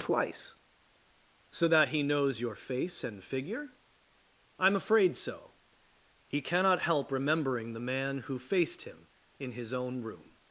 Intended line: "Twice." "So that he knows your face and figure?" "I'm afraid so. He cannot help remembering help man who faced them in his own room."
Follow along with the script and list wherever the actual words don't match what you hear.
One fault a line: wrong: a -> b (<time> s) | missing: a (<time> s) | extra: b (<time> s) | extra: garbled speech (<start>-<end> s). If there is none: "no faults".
wrong: help -> the (7.7 s)
wrong: them -> him (8.8 s)